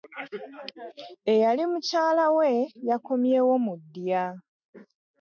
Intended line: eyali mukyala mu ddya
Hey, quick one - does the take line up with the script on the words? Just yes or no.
no